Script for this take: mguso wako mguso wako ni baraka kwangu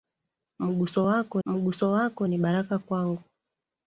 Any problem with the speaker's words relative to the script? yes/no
no